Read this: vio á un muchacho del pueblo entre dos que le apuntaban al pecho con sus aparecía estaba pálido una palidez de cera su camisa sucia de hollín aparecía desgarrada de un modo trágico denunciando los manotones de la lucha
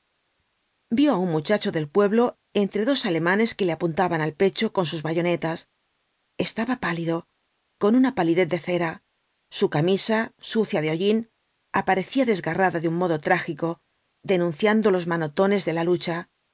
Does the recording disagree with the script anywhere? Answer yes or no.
yes